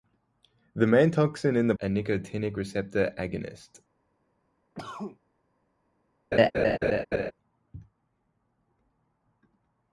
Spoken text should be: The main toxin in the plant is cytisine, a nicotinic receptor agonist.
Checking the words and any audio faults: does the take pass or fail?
fail